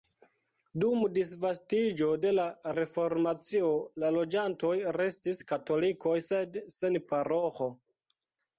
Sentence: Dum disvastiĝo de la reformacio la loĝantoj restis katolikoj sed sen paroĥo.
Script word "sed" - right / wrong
right